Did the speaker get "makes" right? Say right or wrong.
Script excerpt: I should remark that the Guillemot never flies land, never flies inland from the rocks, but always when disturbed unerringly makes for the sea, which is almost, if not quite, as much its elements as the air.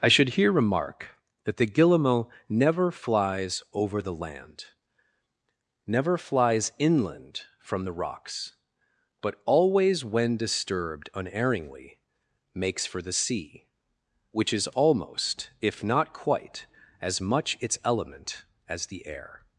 right